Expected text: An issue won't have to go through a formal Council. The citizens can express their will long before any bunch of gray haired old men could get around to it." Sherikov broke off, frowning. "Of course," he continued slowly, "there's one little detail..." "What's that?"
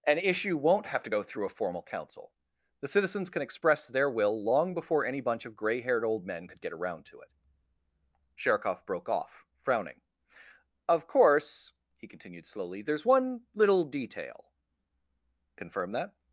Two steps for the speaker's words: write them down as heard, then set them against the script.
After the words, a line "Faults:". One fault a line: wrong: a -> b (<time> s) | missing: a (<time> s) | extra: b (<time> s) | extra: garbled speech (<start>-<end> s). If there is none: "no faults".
An issue won't have to go through a formal Council. The citizens can express their will long before any bunch of gray haired old men could get around to it." Sherikov broke off, frowning. "Of course," he continued slowly, "there's one little detail..." "Confirm that?"
Faults:
wrong: What's -> Confirm (15.6 s)